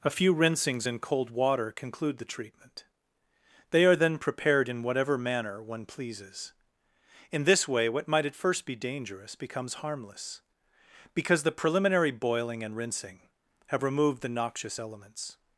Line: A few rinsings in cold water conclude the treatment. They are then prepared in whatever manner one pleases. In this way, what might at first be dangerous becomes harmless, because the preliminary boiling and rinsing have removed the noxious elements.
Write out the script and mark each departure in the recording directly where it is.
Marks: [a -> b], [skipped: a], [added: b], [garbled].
A few rinsings in cold water conclude the treatment. They are then prepared in whatever manner one pleases. In this way, what might at first be dangerous becomes harmless, because the preliminary boiling and rinsing have removed the noxious elements.